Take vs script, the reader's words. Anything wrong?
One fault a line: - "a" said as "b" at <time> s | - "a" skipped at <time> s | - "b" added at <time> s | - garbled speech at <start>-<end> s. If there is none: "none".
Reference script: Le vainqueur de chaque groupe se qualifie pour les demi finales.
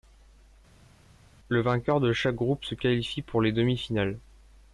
none